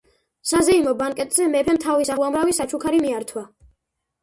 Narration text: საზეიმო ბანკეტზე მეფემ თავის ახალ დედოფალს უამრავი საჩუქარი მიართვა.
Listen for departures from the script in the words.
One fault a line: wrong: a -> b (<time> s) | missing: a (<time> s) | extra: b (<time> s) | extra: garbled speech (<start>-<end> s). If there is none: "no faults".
missing: ახალ დედოფალს (2.1 s)